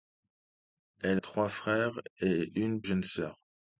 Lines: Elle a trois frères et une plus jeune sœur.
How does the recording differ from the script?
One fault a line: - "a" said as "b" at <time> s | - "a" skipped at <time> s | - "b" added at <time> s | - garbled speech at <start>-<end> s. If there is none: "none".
- "a" skipped at 1.2 s
- "plus" skipped at 2.8 s